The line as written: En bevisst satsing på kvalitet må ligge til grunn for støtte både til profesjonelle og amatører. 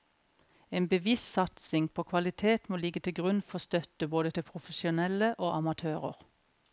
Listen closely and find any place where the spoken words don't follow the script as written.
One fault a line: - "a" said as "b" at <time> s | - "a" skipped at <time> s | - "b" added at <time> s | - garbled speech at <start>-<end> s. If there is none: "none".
none